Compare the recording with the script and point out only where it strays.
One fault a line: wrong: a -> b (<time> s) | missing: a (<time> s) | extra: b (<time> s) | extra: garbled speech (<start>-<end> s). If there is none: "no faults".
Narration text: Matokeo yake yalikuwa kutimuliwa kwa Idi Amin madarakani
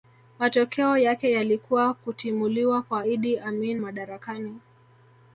no faults